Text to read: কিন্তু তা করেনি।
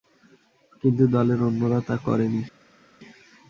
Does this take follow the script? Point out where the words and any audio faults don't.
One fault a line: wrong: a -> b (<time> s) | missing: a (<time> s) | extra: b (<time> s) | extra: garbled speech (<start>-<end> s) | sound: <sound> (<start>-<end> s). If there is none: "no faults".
extra: দলের অন্যরা (1.1 s)